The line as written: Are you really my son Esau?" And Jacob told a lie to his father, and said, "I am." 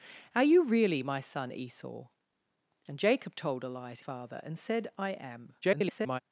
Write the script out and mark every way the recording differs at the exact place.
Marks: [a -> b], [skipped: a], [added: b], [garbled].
Are you really my son Esau?" And Jacob told a lie to [skipped: his] father, and said, "I am." [garbled]